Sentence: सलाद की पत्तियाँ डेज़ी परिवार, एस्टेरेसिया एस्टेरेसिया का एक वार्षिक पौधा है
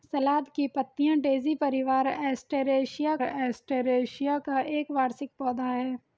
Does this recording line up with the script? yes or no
yes